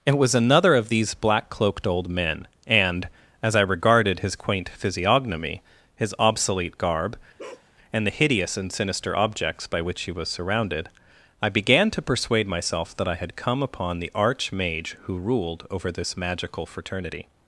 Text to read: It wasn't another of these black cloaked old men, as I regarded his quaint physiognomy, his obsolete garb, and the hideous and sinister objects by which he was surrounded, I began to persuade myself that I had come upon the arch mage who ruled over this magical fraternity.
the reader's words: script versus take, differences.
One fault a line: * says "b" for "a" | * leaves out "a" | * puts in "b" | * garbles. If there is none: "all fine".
* says "was" for "wasn't"
* puts in "and"